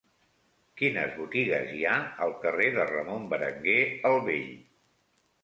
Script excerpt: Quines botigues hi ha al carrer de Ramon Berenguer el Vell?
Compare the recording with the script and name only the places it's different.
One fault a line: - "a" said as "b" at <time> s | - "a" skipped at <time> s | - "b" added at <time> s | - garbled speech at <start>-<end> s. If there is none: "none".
none